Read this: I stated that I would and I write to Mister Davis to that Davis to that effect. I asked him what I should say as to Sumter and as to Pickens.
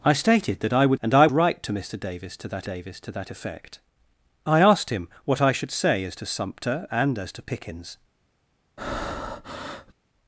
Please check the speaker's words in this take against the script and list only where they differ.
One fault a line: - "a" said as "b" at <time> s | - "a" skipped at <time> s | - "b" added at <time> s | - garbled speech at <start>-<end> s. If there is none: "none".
none